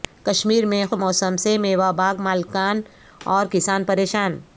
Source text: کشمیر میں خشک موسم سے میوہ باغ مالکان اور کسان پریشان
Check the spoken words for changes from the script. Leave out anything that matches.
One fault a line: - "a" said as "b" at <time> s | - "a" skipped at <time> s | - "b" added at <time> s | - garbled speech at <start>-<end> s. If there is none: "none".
- "خشک" skipped at 0.8 s